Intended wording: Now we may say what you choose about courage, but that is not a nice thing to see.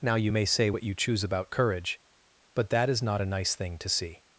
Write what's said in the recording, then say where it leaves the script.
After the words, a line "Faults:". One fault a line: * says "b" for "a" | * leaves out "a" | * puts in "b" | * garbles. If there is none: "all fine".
Now you may say what you choose about courage, but that is not a nice thing to see.
Faults:
* says "you" for "we"